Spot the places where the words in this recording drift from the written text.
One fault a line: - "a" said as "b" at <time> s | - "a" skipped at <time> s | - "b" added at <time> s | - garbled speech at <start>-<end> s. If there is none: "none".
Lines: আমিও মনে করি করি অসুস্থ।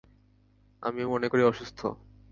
- "করি" skipped at 1.4 s